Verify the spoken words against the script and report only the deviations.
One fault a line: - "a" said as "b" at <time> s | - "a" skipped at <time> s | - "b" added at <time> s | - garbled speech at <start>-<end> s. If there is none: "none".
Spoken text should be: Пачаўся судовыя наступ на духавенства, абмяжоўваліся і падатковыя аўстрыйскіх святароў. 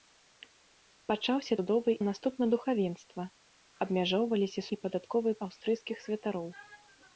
none